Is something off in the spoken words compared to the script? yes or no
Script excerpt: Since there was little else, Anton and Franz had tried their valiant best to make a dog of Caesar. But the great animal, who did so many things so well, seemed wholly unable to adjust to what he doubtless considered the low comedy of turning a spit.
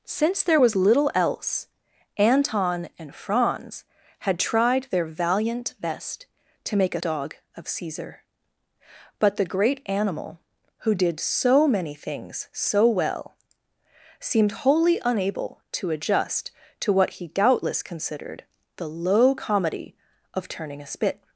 no